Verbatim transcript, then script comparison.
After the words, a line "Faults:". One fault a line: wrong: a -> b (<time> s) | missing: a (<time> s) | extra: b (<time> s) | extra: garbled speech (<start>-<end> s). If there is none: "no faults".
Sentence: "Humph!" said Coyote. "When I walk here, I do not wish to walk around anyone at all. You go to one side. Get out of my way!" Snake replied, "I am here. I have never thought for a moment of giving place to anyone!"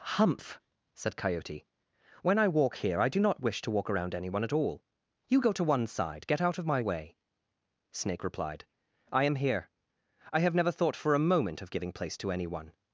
"Humph!" said Coyote. "When I walk here, I do not wish to walk around anyone at all. You go to one side. Get out of my way!" Snake replied, "I am here. I have never thought for a moment of giving place to anyone!"
Faults:
no faults